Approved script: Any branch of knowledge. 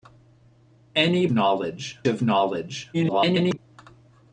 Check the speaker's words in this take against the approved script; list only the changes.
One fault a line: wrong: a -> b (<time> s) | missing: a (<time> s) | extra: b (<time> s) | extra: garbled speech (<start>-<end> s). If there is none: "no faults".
wrong: branch -> knowledge (1.3 s)
extra: garbled speech (2.9-3.6 s)